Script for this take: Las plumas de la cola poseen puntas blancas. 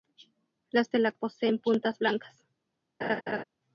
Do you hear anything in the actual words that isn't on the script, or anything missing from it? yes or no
yes